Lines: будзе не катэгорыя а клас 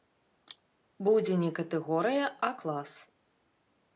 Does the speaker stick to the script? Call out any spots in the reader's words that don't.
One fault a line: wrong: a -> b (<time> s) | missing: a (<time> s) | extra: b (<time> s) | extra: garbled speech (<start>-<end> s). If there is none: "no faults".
no faults